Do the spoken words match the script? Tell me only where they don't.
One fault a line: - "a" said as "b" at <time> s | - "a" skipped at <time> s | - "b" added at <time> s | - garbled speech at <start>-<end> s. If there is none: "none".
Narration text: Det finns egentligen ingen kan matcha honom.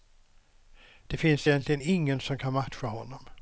- "som" added at 2.2 s